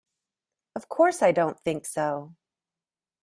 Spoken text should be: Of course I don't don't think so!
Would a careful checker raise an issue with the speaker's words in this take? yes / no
yes